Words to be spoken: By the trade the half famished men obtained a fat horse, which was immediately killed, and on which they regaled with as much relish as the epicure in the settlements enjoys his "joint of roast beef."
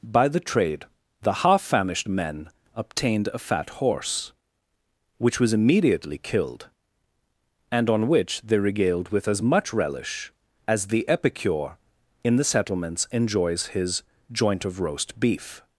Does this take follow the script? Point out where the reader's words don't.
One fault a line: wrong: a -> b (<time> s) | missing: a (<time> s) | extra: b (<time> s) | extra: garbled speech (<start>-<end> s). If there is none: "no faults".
no faults